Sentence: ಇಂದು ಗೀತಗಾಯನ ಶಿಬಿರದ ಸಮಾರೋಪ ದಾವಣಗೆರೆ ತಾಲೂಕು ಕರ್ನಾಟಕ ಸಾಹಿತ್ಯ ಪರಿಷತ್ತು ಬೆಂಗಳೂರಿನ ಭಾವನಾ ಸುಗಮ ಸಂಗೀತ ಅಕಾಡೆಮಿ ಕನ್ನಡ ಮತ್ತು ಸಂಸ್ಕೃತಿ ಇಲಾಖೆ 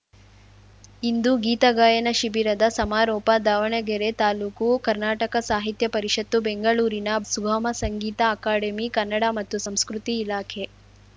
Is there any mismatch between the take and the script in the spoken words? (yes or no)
yes